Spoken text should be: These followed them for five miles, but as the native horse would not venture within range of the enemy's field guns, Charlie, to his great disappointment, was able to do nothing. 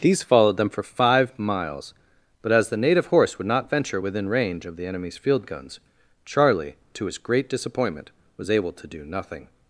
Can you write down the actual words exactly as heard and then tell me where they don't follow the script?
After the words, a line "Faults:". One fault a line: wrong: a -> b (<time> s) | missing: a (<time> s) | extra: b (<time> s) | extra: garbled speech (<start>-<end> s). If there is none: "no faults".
These followed them for five miles, but as the native horse would not venture within range of the enemy's field guns, Charlie, to his great disappointment, was able to do nothing.
Faults:
no faults